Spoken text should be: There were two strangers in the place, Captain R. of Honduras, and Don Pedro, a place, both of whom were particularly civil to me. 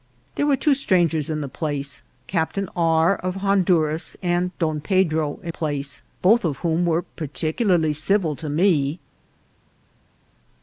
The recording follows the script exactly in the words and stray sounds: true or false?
true